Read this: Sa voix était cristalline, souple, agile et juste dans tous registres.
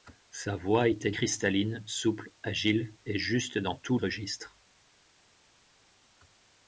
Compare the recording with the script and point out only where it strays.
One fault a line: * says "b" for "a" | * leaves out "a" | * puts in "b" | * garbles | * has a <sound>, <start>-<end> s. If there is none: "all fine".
all fine